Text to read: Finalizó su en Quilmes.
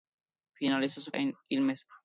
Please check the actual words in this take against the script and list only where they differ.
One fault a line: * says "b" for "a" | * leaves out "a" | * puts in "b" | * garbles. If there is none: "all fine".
all fine